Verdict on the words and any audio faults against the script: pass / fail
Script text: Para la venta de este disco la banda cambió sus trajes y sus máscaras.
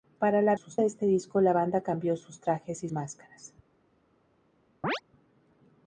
fail